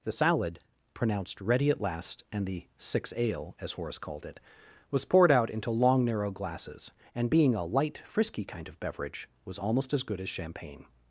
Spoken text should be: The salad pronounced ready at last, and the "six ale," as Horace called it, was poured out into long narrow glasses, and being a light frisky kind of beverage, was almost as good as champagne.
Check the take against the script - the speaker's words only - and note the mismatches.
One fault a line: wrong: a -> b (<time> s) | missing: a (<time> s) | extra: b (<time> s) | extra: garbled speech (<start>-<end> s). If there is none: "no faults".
no faults